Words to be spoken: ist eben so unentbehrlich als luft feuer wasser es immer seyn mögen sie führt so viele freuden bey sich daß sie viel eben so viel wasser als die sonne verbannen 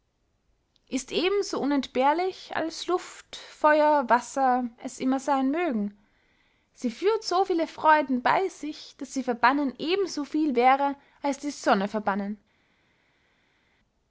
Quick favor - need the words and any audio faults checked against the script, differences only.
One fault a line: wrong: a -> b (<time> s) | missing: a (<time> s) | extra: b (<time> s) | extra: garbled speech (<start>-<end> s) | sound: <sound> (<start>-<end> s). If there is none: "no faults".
wrong: viel -> verbannen (9.2 s)
wrong: wasser -> wäre (10.5 s)